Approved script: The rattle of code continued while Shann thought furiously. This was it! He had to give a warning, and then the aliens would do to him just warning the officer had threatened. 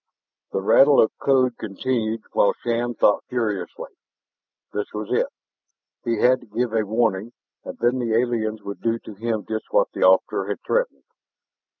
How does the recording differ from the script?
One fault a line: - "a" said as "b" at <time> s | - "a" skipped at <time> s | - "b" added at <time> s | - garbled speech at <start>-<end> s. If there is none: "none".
- "warning" said as "what" at 9.7 s